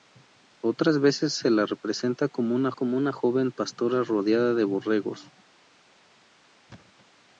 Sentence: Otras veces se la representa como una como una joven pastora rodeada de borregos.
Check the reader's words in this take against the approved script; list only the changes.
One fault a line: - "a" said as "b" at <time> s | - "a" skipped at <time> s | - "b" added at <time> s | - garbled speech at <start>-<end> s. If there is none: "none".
none